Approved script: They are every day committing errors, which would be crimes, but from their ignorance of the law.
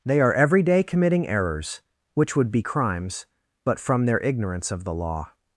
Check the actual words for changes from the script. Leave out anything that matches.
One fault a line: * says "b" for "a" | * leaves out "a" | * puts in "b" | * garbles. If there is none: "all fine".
all fine